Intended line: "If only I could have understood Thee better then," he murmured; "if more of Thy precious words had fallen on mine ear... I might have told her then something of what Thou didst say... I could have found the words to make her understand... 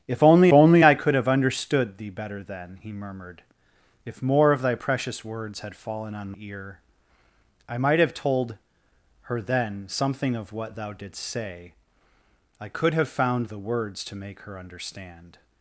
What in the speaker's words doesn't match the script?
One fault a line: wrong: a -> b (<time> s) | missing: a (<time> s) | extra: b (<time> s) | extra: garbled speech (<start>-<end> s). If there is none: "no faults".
extra: only (0.5 s)
missing: mine (6.3 s)